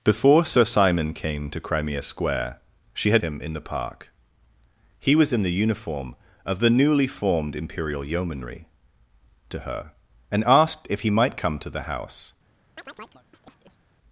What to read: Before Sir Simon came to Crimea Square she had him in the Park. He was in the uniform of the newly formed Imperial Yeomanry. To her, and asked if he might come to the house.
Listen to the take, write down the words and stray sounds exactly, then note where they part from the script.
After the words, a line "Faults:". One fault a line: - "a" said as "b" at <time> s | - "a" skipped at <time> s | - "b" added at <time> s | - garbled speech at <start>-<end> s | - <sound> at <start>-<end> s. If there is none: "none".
Before Sir Simon came to Crimea Square she had him in the Park. He was in the uniform of the newly formed Imperial Yeomanry. To her, and asked if he might come to the house.
Faults:
- chirp at 12.8-13.8 s